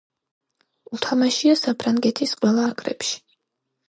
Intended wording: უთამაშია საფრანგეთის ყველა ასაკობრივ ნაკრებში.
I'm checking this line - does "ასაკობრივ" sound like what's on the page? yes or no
no